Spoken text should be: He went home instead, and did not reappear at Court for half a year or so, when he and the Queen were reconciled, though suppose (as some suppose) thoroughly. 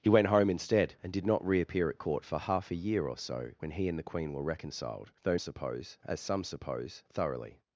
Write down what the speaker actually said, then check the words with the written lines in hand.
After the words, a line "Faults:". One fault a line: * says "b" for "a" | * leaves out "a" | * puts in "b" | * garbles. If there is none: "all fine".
He went home instead, and did not reappear at Court for half a year or so, when he and the Queen were reconciled, though suppose (as some suppose) thoroughly.
Faults:
all fine